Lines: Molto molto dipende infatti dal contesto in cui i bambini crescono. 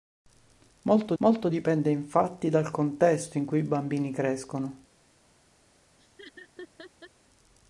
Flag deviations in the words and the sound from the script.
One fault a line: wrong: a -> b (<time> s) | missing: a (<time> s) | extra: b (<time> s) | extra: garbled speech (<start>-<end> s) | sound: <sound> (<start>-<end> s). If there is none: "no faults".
sound: laugh (6.0-7.1 s)